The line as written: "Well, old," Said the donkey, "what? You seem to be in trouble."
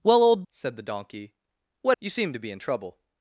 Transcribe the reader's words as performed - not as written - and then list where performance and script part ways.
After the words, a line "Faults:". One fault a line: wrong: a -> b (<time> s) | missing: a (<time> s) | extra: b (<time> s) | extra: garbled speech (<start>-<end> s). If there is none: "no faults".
"Well, old," Said the donkey, "what? You seem to be in trouble."
Faults:
no faults